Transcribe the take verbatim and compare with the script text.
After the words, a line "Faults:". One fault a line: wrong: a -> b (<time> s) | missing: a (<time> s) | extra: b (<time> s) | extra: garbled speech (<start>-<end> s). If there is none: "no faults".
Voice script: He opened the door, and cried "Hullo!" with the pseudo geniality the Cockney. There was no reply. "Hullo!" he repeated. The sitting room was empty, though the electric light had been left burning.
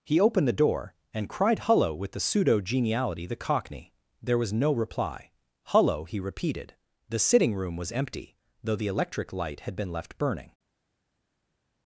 He opened the door, and cried "Hullo!" with the pseudo geniality the Cockney. There was no reply. "Hullo!" he repeated. The sitting room was empty, though the electric light had been left burning.
Faults:
no faults